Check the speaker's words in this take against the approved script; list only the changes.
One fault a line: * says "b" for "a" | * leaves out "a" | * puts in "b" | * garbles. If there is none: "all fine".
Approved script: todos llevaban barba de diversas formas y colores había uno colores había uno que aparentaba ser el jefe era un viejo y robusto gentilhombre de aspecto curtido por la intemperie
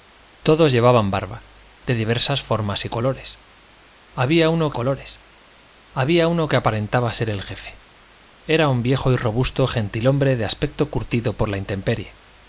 all fine